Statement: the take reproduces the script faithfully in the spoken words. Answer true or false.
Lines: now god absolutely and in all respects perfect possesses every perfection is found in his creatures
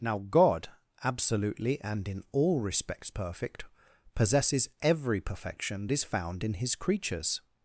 true